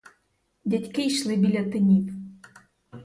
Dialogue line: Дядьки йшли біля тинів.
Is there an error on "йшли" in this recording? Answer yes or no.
no